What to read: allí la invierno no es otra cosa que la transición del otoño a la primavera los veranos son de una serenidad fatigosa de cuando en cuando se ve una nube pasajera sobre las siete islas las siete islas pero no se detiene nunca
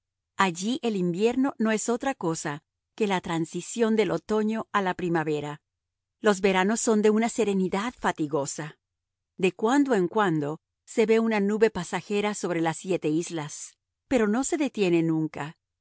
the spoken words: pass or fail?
fail